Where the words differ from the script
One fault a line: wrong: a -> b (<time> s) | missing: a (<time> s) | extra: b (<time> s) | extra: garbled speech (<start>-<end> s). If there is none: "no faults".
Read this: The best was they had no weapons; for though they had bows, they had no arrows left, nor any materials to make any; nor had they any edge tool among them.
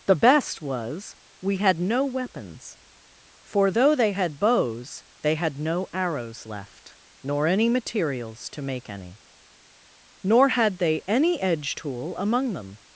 wrong: they -> we (1.4 s)